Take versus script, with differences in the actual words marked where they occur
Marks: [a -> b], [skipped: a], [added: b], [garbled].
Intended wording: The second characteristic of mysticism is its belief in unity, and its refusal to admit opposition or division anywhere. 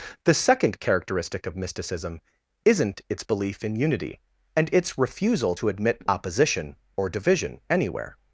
The second characteristic of mysticism [is -> isn't] its belief in unity, and its refusal to admit opposition or division anywhere.